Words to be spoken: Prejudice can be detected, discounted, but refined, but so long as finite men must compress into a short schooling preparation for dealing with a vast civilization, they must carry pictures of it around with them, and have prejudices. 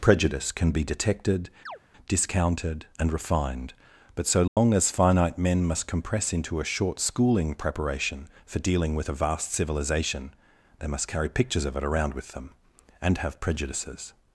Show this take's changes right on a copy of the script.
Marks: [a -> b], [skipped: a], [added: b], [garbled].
Prejudice can be detected, discounted, [but -> and] refined, but so long as finite men must compress into a short schooling preparation for dealing with a vast civilization, they must carry pictures of it around with them, and have prejudices.